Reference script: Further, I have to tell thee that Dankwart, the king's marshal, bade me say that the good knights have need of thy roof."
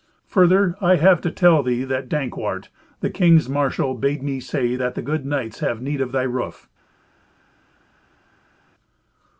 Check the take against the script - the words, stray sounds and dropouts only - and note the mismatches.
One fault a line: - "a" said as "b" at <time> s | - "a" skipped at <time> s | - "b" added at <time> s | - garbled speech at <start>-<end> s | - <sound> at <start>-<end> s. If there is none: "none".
none